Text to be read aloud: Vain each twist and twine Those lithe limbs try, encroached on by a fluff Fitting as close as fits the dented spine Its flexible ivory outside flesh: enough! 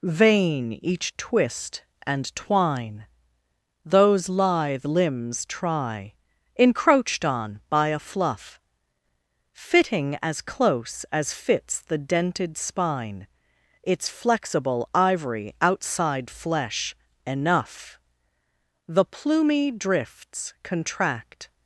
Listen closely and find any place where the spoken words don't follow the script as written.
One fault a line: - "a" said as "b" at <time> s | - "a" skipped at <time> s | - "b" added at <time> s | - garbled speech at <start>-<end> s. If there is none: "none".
- "The plumy drifts contract" added at 18.9 s